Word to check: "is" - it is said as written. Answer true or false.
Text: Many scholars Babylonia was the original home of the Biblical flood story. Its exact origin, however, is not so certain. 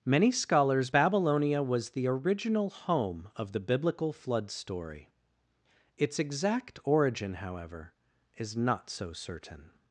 true